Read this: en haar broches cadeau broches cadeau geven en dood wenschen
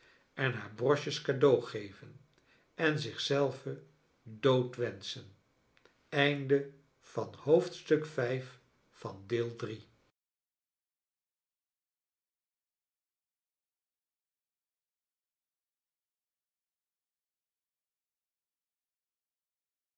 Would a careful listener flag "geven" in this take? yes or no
yes